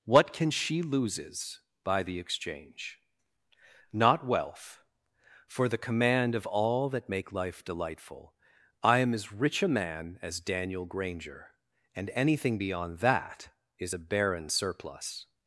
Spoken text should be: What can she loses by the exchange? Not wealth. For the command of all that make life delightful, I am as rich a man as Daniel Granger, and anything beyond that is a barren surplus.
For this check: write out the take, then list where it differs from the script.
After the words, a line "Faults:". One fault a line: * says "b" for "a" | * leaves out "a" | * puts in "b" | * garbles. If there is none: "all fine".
What can she loses by the exchange? Not wealth. For the command of all that make life delightful, I am as rich a man as Daniel Granger, and anything beyond that is a barren surplus.
Faults:
all fine